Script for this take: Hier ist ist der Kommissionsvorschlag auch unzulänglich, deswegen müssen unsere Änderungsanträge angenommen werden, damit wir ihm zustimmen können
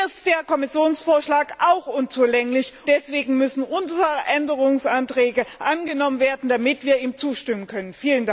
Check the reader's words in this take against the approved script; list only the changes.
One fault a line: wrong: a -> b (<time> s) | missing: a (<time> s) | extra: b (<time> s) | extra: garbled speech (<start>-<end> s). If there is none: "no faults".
no faults